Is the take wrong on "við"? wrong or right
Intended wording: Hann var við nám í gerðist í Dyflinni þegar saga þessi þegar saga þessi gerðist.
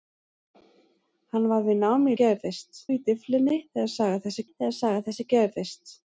right